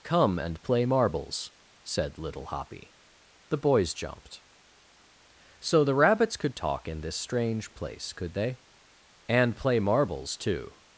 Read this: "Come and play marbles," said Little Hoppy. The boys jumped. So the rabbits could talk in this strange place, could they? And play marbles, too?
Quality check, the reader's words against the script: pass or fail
pass